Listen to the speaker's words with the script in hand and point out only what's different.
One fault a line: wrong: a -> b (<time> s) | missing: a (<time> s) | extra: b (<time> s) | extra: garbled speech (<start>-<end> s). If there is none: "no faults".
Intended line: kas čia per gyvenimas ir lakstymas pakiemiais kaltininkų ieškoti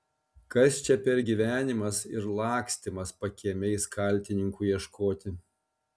no faults